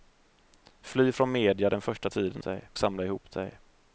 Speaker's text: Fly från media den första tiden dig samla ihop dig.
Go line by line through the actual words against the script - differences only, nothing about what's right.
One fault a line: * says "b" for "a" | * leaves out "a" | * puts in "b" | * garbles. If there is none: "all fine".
all fine